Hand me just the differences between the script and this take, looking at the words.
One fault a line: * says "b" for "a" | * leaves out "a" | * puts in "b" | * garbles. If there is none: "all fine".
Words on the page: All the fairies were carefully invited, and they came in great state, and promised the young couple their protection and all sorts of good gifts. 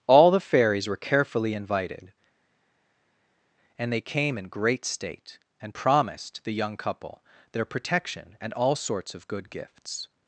all fine